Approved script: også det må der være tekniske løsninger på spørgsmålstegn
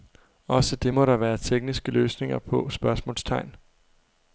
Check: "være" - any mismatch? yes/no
no